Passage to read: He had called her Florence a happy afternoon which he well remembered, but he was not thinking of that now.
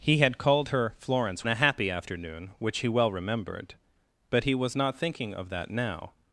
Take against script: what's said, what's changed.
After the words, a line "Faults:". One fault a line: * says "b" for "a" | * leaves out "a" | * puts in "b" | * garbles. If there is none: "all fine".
He had called her Florence a happy afternoon which he well remembered, but he was not thinking of that now.
Faults:
all fine